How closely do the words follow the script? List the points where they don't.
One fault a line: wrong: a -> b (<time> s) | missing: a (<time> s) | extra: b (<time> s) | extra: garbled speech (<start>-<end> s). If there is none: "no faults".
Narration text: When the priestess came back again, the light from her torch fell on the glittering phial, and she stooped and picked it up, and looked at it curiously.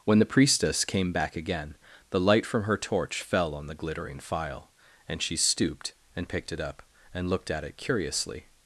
no faults